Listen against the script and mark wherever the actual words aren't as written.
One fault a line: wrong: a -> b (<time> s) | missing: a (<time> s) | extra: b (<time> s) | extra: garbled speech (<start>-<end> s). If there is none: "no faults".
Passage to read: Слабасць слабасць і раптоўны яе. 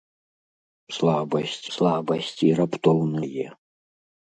no faults